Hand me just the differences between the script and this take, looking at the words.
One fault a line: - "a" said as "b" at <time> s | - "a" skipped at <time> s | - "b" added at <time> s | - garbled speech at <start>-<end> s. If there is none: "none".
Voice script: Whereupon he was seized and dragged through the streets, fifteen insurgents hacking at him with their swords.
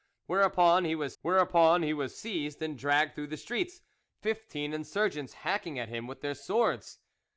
- "whereupon he was" added at 1.2 s